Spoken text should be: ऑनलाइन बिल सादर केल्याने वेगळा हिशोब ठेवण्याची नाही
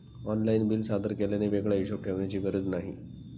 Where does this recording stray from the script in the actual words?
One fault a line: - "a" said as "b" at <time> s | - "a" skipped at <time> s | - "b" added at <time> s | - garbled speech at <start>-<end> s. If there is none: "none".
- "गरज" added at 2.4 s